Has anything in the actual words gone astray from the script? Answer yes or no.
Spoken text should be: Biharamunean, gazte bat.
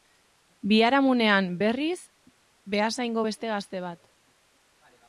yes